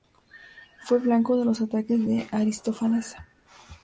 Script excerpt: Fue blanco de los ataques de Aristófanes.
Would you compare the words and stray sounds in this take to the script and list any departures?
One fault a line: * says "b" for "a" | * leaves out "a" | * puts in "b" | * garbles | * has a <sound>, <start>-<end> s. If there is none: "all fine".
all fine